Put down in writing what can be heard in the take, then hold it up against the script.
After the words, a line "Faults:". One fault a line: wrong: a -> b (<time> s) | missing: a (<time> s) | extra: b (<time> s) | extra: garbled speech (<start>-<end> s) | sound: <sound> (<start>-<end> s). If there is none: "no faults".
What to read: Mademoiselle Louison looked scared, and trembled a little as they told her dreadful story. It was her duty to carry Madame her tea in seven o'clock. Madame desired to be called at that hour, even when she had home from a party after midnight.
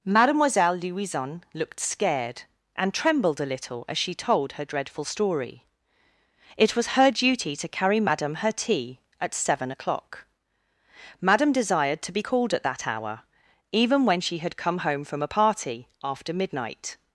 Mademoiselle Louison looked scared, and trembled a little as she told her dreadful story. It was her duty to carry Madame her tea at seven o'clock. Madame desired to be called at that hour, even when she had come home from a party after midnight.
Faults:
wrong: they -> she (4.0 s)
wrong: in -> at (9.2 s)
extra: come (14.5 s)